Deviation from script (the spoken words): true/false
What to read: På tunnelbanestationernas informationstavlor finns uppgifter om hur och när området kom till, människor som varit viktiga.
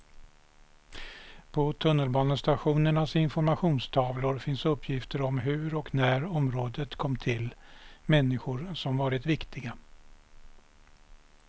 false